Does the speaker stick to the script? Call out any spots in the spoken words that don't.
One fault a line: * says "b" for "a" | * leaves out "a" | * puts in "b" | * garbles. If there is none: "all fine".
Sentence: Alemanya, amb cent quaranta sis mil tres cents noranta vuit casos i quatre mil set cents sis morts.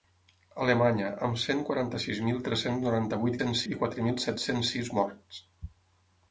* says "cents" for "casos"